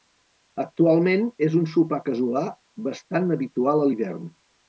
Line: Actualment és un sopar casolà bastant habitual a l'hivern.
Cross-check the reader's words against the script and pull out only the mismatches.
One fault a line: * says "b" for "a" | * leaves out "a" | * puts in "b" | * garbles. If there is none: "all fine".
all fine